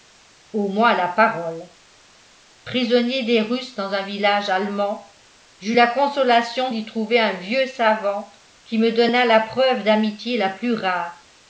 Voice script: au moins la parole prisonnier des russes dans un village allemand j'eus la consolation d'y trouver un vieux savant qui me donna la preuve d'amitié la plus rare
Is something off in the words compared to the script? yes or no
no